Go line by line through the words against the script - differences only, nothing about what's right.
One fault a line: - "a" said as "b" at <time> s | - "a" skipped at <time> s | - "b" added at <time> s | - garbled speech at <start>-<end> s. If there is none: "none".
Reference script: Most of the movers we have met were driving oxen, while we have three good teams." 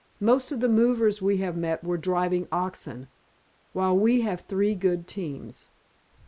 none